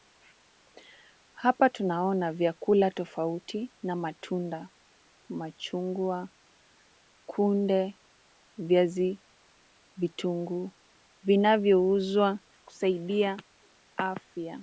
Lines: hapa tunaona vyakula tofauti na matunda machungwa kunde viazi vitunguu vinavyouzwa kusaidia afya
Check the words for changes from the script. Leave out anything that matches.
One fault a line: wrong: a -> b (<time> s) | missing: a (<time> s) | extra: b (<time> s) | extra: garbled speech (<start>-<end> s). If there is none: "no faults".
no faults